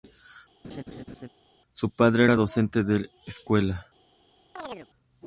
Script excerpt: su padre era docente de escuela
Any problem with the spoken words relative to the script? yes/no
no